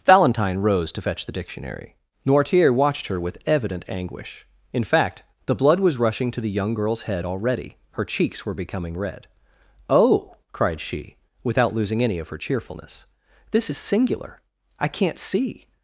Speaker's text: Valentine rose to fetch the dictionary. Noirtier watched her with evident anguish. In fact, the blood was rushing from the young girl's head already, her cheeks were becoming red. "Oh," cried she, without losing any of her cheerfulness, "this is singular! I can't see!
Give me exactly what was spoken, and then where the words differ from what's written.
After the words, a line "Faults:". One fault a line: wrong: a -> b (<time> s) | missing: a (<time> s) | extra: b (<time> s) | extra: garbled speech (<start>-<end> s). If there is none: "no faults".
Valentine rose to fetch the dictionary. Noirtier watched her with evident anguish. In fact, the blood was rushing to the young girl's head already, her cheeks were becoming red. "Oh," cried she, without losing any of her cheerfulness, "this is singular! I can't see!
Faults:
wrong: from -> to (6.3 s)